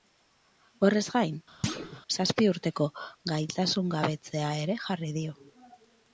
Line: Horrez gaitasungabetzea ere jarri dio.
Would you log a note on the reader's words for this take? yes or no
yes